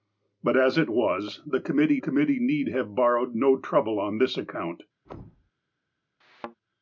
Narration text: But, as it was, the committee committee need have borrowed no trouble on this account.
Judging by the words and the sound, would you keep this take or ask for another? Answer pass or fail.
fail